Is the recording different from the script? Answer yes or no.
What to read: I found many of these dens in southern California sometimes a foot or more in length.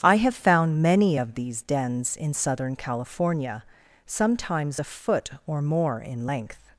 yes